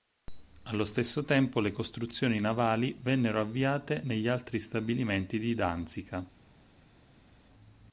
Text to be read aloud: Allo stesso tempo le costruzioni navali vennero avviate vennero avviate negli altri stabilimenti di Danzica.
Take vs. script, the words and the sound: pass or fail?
fail